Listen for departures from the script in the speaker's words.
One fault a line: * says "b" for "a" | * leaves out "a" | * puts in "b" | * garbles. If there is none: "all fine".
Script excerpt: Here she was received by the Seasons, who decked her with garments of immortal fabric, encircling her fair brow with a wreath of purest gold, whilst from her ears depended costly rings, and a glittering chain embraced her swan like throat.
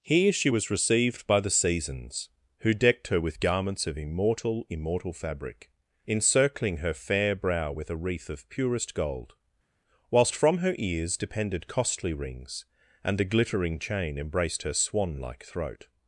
* puts in "immortal"